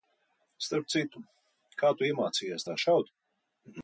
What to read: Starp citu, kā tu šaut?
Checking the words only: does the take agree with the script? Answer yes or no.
no